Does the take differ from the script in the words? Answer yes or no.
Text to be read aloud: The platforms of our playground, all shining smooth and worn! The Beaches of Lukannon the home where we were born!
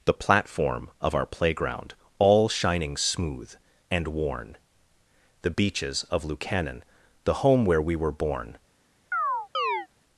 yes